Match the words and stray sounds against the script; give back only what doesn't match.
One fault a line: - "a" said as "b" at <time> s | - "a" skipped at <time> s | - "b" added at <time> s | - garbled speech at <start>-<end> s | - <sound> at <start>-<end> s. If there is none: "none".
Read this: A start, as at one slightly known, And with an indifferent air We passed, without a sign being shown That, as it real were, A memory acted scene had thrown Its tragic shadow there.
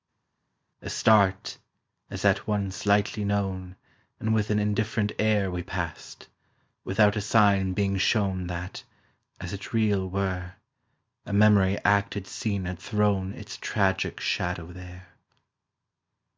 none